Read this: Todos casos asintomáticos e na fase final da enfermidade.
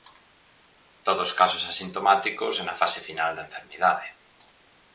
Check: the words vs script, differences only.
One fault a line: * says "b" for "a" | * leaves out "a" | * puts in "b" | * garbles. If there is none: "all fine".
all fine